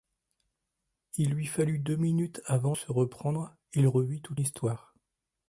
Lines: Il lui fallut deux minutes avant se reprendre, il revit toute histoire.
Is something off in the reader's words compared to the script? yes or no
no